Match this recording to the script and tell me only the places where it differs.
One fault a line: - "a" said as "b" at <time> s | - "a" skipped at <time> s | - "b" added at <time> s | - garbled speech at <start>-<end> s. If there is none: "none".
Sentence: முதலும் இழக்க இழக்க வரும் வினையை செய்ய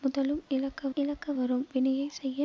none